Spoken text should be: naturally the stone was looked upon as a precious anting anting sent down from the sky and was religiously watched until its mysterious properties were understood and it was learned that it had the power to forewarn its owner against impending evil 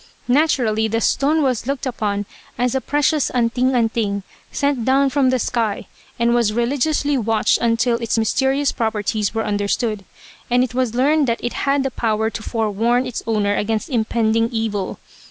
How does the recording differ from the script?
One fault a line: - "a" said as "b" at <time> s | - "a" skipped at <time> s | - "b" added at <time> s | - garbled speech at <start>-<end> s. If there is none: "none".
none